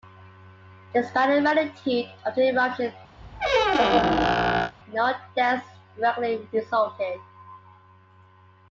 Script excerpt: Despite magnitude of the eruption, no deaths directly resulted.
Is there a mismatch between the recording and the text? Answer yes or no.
yes